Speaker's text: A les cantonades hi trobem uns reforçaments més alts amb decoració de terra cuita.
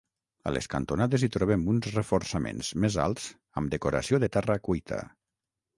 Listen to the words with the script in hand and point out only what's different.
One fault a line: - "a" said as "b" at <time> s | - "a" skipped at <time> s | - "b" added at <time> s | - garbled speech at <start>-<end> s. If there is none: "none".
none